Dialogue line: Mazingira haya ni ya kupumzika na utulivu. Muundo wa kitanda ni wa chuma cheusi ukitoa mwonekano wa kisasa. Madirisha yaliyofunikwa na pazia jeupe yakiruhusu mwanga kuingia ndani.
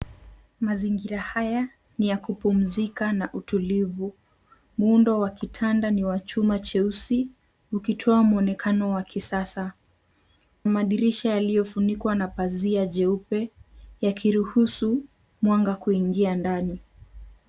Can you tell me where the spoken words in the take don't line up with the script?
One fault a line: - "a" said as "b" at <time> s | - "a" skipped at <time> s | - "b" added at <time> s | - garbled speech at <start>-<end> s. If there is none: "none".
none